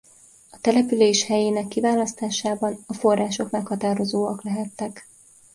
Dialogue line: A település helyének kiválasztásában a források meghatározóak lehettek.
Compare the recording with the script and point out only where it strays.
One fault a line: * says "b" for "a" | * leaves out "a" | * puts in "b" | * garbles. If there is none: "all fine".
all fine